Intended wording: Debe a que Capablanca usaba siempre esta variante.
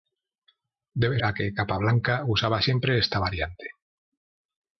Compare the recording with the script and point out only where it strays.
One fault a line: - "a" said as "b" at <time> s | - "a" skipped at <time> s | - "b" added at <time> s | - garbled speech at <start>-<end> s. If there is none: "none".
none